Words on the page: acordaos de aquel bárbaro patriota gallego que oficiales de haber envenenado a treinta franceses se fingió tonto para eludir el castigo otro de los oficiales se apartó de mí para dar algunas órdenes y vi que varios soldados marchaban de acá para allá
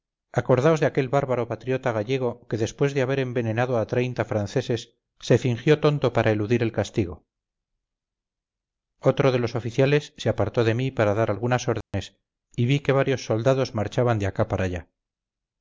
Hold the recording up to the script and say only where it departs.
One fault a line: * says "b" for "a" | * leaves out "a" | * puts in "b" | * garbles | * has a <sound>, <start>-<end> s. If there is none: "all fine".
* says "después" for "oficiales"
* has a dropout, 11.8-11.9 s